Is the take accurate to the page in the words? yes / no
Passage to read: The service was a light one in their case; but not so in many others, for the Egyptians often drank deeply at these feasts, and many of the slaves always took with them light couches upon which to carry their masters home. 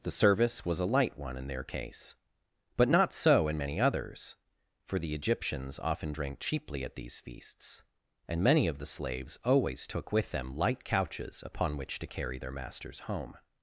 no